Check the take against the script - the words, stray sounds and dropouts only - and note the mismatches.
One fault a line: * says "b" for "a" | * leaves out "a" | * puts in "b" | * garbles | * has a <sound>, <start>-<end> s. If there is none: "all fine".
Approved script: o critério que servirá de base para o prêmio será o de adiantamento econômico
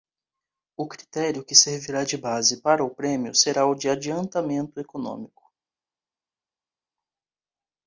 all fine